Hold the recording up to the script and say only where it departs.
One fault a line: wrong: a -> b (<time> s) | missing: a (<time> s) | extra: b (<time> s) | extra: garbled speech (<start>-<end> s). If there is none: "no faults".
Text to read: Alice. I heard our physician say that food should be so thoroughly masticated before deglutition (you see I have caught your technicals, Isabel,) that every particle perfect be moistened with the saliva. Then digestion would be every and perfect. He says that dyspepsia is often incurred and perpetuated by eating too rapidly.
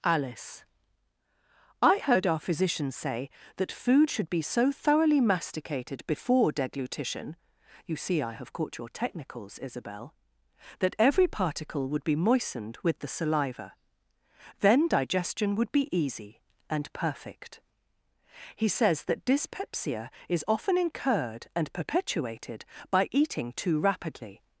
wrong: perfect -> would (11.9 s)
wrong: every -> easy (15.9 s)